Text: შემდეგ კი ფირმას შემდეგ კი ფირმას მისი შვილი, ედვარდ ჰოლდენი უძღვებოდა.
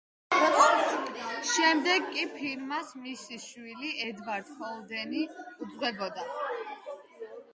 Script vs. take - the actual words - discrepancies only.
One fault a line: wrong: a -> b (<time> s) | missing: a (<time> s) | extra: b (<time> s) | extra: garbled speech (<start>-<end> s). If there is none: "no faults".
missing: შემდეგ კი ფირმას (3.0 s)